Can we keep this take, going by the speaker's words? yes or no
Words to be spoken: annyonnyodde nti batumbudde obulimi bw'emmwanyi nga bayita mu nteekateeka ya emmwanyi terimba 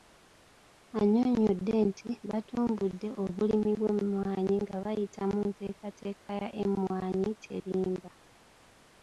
yes